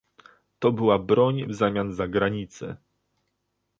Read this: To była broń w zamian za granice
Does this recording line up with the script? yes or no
yes